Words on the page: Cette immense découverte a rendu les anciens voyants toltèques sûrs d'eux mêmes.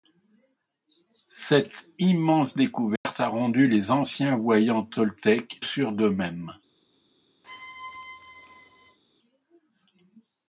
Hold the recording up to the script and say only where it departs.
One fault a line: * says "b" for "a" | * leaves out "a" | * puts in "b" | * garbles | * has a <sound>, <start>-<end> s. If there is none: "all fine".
* has a dropout, 3.0-3.1 s
* has a squeak, 7.4-9.0 s